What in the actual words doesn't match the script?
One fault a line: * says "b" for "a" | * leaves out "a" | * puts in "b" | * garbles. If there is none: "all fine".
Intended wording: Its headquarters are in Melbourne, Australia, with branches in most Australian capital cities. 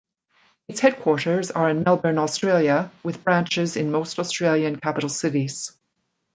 all fine